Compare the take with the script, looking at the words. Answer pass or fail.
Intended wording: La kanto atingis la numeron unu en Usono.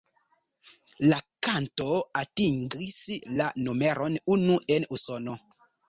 pass